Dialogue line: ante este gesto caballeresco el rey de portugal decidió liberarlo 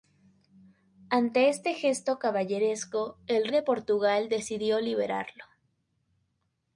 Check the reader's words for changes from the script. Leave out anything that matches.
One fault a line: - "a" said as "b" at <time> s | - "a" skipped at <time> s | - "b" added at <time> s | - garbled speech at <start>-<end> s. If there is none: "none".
- "rey" skipped at 3.5 s